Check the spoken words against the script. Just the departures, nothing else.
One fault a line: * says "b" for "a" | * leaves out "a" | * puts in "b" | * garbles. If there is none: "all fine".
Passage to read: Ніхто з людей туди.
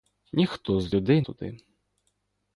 all fine